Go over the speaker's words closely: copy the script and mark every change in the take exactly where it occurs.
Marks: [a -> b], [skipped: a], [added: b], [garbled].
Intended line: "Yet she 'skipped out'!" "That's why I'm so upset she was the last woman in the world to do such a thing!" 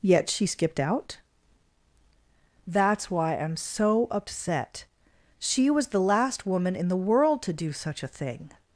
"Yet she 'skipped out'!" "That's why I'm so upset she was the last woman in the world to do such a thing!"